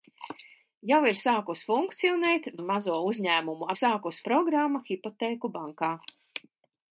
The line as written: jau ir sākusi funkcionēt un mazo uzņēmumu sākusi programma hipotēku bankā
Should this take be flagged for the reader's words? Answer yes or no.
no